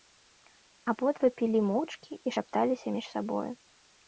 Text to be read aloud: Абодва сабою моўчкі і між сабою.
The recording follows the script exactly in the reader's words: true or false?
false